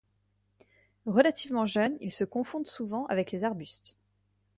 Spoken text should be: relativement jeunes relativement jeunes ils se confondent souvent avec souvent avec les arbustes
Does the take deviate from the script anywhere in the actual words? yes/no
yes